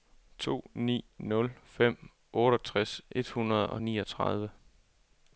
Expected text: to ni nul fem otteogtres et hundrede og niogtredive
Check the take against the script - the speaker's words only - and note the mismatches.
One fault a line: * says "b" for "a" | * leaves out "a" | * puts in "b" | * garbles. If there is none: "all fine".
all fine